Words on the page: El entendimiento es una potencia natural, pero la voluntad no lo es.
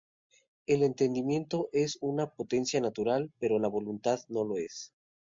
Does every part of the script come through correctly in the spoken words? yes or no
yes